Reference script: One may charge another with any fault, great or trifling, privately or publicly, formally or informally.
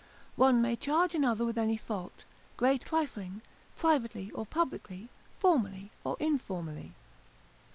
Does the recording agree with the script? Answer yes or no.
no